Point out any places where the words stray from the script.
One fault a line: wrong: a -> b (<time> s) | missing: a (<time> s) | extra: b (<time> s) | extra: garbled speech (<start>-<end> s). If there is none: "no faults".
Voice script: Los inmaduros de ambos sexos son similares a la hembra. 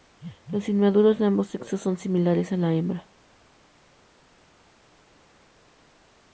no faults